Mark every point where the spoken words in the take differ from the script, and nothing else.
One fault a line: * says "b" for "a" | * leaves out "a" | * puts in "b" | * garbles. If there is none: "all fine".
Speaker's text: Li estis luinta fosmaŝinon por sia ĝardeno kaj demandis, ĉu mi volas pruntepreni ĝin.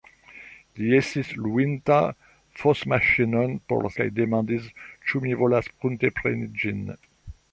* leaves out "sia ĝardeno"